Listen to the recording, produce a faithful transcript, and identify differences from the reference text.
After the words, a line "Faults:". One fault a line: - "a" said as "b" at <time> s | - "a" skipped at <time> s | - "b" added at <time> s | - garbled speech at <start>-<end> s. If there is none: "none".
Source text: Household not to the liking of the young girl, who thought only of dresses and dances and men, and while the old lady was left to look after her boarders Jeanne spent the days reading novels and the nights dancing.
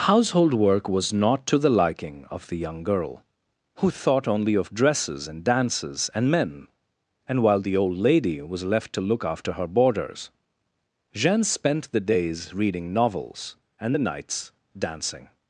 Household work was not to the liking of the young girl, who thought only of dresses and dances and men, and while the old lady was left to look after her boarders Jeanne spent the days reading novels and the nights dancing.
Faults:
- "work was" added at 0.6 s